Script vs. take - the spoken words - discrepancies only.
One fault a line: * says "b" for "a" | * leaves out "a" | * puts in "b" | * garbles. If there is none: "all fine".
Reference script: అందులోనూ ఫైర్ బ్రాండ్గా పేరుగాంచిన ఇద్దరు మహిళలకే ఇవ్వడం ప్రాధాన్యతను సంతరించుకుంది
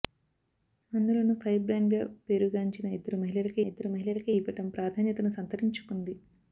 * puts in "ఇద్దరు మహిళలకే"